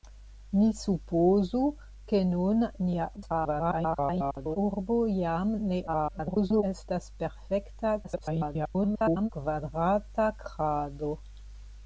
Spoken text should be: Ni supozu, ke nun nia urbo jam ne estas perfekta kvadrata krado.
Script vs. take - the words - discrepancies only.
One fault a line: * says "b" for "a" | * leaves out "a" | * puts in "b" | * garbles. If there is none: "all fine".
* garbles
* garbles
* garbles